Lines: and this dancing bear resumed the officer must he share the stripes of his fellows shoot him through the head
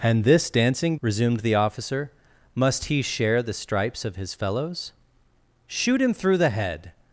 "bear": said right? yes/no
no